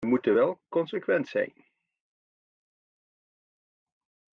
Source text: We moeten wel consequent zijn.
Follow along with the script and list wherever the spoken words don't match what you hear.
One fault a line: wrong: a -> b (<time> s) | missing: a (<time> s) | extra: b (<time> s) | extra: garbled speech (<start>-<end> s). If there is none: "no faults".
no faults